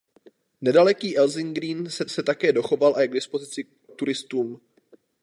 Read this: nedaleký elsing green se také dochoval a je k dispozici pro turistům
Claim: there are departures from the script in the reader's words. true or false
true